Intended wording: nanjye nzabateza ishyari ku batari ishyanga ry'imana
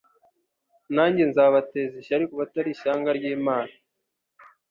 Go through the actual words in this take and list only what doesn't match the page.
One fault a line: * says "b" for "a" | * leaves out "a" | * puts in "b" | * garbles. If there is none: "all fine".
all fine